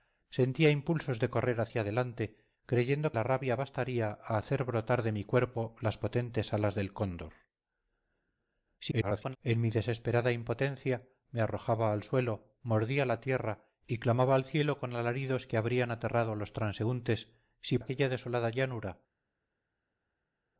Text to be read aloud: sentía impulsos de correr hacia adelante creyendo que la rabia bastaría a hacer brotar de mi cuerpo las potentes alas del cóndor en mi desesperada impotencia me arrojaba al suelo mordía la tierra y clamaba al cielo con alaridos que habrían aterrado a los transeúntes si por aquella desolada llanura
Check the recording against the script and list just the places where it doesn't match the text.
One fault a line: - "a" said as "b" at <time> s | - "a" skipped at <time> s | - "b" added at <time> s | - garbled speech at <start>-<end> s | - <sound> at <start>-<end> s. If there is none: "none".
- "que" skipped at 3.1 s
- garbled speech at 8.8-9.4 s
- "por" skipped at 17.8 s